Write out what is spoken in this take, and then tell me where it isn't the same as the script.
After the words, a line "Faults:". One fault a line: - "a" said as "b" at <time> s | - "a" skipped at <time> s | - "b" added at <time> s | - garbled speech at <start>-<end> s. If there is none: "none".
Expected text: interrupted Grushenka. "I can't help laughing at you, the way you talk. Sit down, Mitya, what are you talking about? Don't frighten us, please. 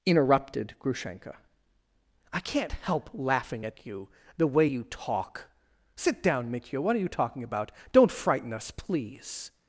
interrupted Grushenka. "I can't help laughing at you, the way you talk. Sit down, Mitya, what are you talking about? Don't frighten us, please.
Faults:
none